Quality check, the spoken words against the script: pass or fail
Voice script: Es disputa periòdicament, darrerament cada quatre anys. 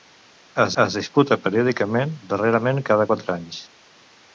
fail